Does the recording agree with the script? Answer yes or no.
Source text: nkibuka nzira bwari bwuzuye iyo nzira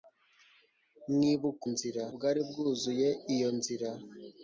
yes